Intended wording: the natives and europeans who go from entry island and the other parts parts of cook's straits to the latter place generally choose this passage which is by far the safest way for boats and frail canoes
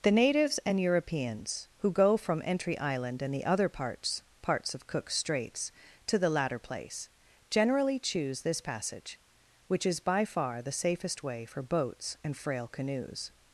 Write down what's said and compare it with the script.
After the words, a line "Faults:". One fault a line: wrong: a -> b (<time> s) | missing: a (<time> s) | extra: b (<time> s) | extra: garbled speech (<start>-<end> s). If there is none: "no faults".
the natives and europeans who go from entry island and the other parts parts of cook's straits to the latter place generally choose this passage which is by far the safest way for boats and frail canoes
Faults:
no faults